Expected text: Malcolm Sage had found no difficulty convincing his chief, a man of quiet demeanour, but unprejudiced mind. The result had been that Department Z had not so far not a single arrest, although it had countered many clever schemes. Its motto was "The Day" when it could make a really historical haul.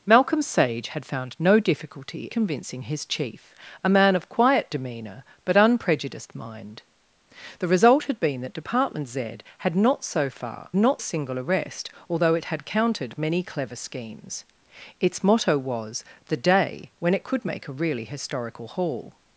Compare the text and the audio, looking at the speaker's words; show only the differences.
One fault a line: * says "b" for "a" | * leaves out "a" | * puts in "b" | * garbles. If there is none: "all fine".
all fine